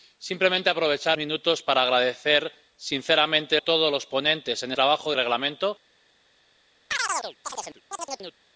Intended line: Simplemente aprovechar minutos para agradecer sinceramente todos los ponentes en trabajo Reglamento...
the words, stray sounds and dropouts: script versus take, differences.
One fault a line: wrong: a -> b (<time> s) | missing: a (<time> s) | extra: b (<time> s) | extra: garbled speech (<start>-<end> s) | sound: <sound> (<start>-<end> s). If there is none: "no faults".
sound: chirp (6.9-8.4 s)